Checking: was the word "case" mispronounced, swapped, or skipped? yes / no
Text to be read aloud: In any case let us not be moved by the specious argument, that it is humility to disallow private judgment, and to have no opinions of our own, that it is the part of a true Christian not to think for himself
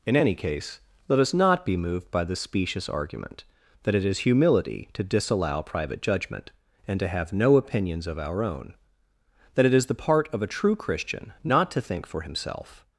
no